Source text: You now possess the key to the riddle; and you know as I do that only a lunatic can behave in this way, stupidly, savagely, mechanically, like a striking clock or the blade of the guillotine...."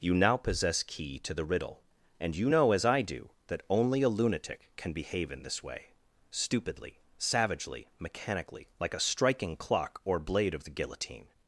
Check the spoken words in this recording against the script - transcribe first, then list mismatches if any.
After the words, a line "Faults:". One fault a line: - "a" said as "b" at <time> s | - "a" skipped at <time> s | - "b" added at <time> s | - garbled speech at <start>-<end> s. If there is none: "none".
You now possess key to the riddle; and you know as I do that only a lunatic can behave in this way, stupidly, savagely, mechanically, like a striking clock or blade of the guillotine...."
Faults:
- "the" skipped at 0.8 s
- "the" skipped at 10.2 s